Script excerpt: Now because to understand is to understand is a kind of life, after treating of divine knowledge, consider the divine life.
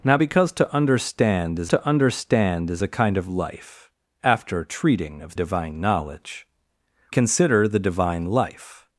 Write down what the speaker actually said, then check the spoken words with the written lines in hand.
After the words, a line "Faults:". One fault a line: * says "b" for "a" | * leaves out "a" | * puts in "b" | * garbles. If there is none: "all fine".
Now because to understand is to understand is a kind of life, after treating of divine knowledge, consider the divine life.
Faults:
all fine